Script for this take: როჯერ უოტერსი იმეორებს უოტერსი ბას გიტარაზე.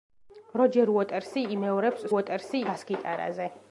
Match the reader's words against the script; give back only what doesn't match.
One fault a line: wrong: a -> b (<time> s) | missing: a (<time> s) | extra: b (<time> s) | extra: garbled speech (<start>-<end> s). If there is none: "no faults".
no faults